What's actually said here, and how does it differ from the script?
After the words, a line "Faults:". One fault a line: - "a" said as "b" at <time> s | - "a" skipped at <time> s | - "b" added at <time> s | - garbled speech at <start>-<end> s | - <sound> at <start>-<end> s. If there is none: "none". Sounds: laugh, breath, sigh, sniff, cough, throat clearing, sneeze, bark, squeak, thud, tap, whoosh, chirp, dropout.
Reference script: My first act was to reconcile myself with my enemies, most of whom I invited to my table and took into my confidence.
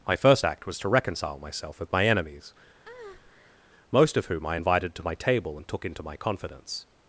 My first act was to reconcile myself with my enemies, most of whom I invited to my table and took into my confidence.
Faults:
- breath at 2.8-3.6 s